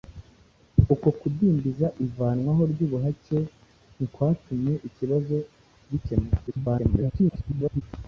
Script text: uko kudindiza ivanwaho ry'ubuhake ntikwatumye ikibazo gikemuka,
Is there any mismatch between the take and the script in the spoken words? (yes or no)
yes